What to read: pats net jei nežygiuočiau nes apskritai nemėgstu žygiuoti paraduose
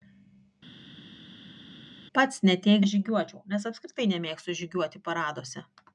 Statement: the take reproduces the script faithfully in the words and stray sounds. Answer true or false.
true